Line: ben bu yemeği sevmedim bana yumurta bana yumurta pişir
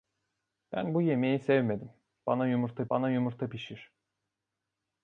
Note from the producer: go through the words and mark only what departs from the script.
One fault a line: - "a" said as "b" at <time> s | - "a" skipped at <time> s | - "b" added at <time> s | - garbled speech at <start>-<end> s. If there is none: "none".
none